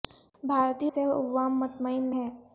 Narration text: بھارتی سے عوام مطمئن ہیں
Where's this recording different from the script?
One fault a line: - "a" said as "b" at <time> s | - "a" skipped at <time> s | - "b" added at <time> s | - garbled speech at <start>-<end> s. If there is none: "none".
none